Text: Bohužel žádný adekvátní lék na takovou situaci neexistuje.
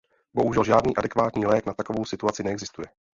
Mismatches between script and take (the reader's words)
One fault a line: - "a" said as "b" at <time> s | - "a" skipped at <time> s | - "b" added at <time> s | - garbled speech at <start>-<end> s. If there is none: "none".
none